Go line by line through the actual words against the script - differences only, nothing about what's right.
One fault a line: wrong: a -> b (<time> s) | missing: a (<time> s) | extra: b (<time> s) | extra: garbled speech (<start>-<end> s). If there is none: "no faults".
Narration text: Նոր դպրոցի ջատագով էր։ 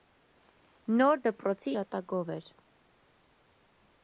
no faults